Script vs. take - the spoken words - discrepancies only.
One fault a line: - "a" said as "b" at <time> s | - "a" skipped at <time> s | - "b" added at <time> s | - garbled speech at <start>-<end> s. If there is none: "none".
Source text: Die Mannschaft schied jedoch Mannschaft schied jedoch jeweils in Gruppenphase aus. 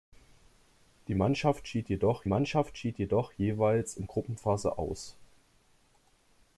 none